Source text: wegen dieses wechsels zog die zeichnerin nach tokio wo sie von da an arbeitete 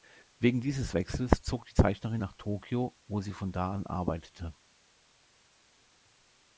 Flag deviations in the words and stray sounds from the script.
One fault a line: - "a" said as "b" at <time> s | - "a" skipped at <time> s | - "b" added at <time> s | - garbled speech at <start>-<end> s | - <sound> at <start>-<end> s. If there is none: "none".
none